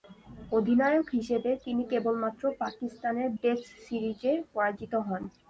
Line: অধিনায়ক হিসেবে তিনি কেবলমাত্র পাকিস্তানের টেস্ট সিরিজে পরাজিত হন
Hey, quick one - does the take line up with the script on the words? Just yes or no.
yes